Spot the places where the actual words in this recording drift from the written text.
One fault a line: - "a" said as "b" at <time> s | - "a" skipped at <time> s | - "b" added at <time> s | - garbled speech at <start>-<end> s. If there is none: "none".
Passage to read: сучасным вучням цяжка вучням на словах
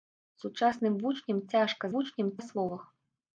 none